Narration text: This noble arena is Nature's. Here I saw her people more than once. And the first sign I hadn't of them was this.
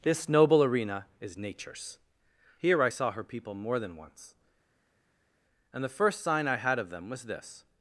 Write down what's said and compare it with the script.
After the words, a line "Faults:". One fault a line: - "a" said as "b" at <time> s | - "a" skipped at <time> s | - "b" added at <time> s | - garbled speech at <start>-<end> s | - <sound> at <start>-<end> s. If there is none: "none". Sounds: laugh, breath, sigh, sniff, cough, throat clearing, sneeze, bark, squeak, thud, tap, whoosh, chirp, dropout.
This noble arena is Nature's. Here I saw her people more than once. And the first sign I had of them was this.
Faults:
- "hadn't" said as "had" at 6.5 s